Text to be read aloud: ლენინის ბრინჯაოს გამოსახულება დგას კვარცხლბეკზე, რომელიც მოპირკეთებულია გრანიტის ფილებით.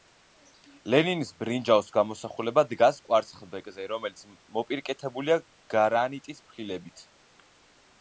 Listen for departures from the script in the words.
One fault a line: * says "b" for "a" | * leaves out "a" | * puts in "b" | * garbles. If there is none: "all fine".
all fine